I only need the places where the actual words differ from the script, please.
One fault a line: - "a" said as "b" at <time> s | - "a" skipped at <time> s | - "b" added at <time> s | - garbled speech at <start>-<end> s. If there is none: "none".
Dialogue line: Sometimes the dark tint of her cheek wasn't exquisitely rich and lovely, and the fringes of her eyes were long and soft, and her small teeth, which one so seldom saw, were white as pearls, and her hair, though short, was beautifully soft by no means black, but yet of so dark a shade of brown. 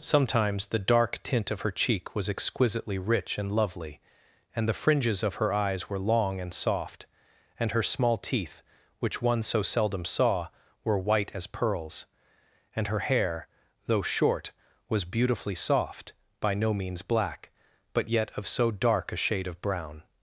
- "wasn't" said as "was" at 2.1 s